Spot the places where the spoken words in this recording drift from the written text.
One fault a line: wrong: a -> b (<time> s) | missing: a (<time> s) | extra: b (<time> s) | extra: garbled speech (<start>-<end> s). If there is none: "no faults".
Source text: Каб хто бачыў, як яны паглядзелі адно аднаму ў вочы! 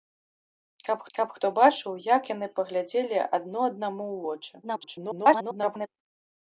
extra: каб (1.2 s)
extra: garbled speech (4.6-5.9 s)